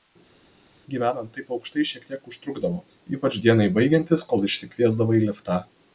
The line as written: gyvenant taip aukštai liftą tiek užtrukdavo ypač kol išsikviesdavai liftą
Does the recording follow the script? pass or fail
fail